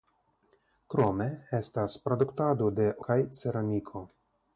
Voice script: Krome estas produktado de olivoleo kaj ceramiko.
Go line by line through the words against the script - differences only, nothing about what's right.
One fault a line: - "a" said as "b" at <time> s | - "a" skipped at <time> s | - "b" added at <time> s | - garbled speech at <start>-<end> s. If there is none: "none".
- "olivoleo" skipped at 2.9 s